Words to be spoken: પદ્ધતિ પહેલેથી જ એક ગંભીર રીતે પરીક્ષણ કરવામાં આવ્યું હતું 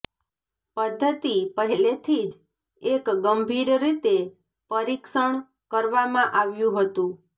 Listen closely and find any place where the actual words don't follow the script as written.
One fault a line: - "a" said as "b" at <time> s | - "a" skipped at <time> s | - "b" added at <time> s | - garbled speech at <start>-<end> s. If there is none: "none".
none